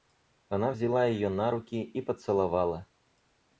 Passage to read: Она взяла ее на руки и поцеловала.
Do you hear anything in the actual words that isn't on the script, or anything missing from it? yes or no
no